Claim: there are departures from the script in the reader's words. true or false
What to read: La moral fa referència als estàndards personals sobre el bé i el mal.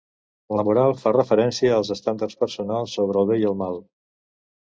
false